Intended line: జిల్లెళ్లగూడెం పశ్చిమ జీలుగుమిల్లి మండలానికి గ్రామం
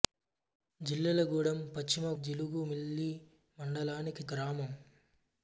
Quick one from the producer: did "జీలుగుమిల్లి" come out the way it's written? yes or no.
yes